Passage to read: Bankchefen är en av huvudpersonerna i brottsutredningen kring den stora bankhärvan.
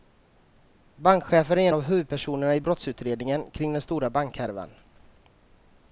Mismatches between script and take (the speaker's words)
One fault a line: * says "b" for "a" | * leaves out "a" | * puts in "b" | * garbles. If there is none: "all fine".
* leaves out "en"